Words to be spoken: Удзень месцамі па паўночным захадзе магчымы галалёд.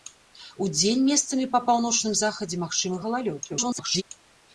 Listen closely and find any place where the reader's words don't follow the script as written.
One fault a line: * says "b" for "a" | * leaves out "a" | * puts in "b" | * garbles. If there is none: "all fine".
* garbles